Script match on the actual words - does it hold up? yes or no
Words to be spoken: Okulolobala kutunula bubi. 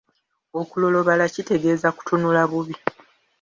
no